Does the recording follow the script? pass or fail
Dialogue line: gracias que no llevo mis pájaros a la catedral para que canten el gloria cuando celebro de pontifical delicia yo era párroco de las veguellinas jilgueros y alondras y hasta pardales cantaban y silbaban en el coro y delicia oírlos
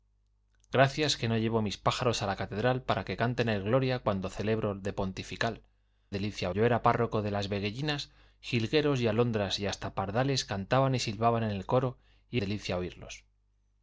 pass